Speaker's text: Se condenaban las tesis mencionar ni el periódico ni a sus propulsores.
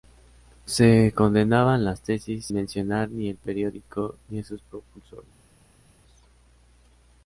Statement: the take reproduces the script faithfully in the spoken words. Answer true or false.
true